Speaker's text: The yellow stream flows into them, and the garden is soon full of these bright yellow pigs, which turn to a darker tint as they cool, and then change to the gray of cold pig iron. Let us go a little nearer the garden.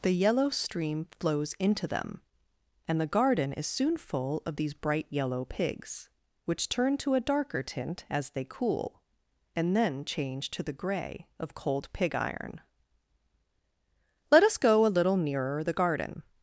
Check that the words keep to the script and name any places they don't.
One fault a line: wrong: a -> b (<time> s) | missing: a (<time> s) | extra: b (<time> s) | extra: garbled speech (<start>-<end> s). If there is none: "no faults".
no faults